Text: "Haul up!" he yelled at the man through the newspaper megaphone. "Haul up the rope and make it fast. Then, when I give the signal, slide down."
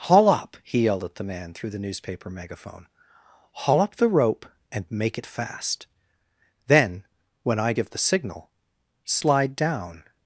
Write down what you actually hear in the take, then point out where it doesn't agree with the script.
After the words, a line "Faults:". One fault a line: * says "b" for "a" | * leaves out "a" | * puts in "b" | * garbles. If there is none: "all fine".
"Haul up!" he yelled at the man through the newspaper megaphone. "Haul up the rope and make it fast. Then, when I give the signal, slide down."
Faults:
all fine